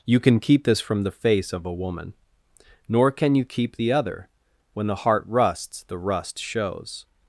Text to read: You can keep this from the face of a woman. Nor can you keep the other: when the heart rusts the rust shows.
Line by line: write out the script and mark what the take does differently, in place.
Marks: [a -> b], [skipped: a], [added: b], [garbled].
You can keep this from the face of a woman. Nor can you keep the other: when the heart rusts the rust shows.